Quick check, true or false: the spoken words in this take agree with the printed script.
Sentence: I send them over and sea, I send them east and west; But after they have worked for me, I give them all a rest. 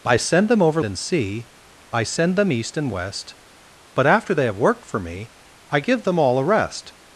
true